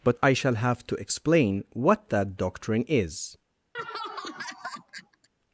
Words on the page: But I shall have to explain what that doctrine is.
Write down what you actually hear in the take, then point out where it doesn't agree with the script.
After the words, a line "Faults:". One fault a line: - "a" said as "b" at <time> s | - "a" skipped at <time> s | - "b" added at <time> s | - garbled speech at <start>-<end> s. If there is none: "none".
But I shall have to explain what that doctrine is.
Faults:
none